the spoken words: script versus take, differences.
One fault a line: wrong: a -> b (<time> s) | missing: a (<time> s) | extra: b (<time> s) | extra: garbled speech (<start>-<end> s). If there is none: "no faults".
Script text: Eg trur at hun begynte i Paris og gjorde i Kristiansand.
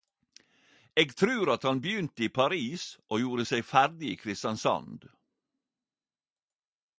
wrong: hun -> han (1.7 s)
extra: seg ferdig (3.5 s)